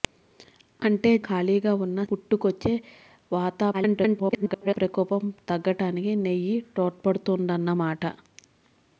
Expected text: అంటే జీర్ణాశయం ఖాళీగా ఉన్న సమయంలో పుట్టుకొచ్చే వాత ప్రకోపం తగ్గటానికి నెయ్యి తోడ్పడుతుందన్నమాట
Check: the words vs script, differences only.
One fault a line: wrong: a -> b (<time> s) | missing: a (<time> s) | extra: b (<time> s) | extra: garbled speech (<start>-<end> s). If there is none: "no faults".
missing: జీర్ణాశయం (1.1 s)
missing: సమయంలో (2.0 s)
extra: garbled speech (3.7-4.8 s)